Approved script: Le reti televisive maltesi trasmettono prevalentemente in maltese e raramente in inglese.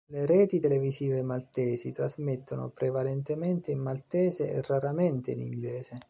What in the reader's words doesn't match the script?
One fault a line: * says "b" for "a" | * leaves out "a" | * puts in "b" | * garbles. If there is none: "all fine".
all fine